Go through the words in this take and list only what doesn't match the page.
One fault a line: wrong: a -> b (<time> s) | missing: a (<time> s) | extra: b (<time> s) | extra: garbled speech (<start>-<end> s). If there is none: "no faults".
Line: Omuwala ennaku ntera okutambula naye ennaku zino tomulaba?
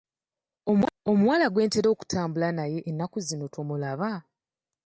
wrong: ennaku -> gwe (1.5 s)